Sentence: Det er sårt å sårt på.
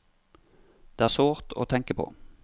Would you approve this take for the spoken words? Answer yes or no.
no